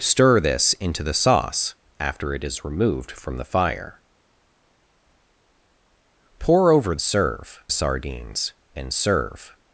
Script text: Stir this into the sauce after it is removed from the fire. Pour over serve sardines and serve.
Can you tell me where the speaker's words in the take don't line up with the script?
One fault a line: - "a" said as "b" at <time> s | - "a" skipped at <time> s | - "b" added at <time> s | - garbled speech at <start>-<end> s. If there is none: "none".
none